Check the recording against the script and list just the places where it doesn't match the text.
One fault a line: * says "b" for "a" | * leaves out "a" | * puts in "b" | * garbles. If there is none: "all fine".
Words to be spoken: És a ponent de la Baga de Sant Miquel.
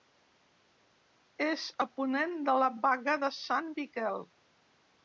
all fine